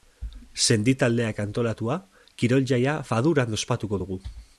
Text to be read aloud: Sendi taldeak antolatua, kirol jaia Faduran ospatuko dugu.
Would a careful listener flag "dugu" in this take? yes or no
no